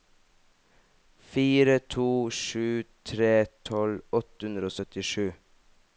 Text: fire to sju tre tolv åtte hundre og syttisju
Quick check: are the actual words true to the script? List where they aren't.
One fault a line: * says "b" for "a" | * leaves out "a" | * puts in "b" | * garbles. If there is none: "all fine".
all fine